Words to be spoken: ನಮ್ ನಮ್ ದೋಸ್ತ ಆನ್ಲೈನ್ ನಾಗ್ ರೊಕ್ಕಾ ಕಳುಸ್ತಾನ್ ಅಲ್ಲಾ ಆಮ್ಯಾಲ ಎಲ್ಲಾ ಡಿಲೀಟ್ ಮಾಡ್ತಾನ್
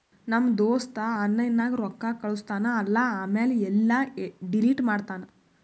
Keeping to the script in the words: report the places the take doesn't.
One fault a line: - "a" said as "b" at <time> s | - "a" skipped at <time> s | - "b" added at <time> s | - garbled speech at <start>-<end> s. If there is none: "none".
- "ನಮ್" skipped at 0.5 s